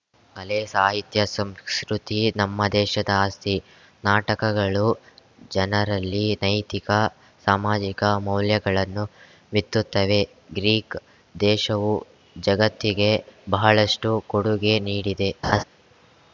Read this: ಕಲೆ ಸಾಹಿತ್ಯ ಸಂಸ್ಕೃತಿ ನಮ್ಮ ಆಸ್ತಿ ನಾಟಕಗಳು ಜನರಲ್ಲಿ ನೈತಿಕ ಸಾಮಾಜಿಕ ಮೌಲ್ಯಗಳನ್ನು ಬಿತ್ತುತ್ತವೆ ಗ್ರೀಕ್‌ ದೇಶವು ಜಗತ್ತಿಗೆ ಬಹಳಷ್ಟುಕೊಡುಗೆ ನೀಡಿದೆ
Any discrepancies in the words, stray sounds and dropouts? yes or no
yes